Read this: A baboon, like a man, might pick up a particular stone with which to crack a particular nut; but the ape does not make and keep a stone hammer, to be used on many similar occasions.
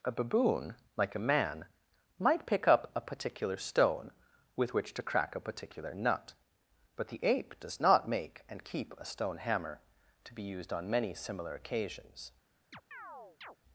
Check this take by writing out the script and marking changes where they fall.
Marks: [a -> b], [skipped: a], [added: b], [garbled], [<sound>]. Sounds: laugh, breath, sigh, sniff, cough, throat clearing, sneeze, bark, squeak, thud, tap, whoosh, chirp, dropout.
A baboon, like a man, might pick up a particular stone with which to crack a particular nut; but the ape does not make and keep a stone hammer, to be used on many similar occasions. [chirp]